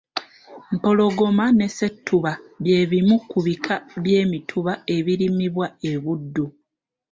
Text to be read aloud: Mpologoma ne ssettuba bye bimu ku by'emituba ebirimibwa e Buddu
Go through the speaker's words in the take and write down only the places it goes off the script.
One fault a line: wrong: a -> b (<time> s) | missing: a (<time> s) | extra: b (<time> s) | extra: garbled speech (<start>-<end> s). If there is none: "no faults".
extra: bika (3.5 s)